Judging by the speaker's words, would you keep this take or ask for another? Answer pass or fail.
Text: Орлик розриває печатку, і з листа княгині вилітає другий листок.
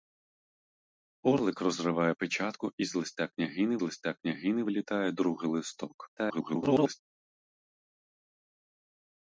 fail